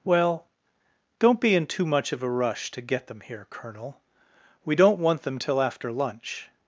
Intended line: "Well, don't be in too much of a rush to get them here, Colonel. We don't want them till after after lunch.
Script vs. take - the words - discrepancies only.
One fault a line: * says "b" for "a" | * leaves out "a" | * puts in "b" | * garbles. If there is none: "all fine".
* leaves out "after"